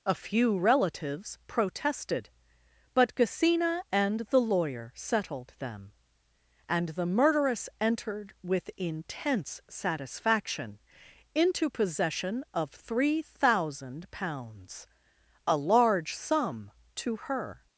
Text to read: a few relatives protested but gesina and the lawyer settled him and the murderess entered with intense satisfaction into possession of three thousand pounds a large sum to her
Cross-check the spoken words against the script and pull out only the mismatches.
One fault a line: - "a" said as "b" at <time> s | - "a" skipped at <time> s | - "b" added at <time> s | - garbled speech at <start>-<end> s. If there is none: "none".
- "him" said as "them" at 5.6 s